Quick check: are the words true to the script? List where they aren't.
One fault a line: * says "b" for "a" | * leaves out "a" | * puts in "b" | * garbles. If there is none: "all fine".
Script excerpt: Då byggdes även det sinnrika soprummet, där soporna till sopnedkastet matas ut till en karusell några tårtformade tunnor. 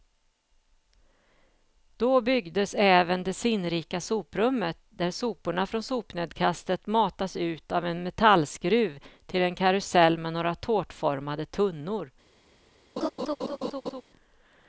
* says "från" for "till"
* puts in "av en metallskruv"
* puts in "med"